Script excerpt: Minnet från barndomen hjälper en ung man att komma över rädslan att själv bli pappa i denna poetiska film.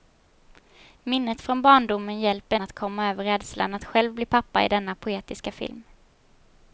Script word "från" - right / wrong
right